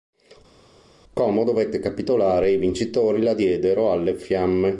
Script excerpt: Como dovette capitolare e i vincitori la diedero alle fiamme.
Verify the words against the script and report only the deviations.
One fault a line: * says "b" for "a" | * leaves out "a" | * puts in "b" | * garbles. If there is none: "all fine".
all fine